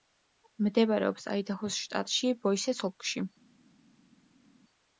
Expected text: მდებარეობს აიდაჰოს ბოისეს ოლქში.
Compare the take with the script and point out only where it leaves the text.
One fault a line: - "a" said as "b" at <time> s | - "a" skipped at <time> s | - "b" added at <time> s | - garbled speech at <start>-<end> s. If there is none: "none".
- "შტატში" added at 1.9 s